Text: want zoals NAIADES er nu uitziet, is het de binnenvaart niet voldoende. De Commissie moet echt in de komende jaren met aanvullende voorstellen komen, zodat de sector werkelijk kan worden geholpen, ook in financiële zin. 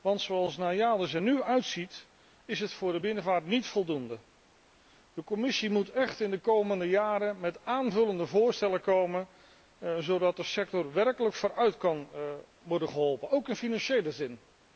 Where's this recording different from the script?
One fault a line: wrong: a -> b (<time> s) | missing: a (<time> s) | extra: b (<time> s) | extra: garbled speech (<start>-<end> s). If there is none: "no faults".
extra: voor (2.7 s)
extra: vooruit (11.3 s)